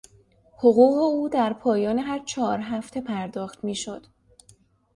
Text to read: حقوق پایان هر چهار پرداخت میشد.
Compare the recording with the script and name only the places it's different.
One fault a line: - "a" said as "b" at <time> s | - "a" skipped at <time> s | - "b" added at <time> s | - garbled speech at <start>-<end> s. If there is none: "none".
- "او در" added at 1.0 s
- "هفته" added at 2.6 s